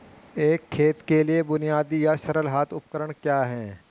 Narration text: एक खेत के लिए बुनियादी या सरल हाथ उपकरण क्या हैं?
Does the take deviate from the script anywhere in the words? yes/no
no